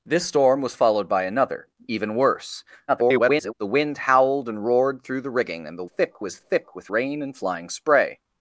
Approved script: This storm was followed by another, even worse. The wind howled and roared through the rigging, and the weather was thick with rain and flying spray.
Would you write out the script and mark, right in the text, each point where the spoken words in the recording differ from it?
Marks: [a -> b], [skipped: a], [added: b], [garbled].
This storm was followed by another, even worse. [garbled] The wind howled and roared through the rigging, and the [weather -> thick] was thick with rain and flying spray.